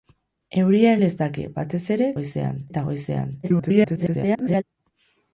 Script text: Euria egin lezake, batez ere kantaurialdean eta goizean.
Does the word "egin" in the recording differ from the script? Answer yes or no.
yes